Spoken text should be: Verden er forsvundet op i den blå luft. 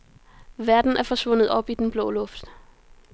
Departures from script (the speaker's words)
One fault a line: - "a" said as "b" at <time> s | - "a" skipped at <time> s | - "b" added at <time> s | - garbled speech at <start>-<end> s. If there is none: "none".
none